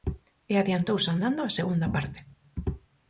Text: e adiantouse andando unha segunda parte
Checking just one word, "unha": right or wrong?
wrong